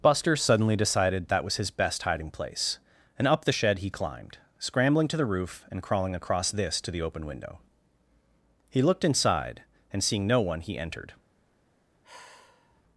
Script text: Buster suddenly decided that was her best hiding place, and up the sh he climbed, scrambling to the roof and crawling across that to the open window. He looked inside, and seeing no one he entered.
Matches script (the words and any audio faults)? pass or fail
fail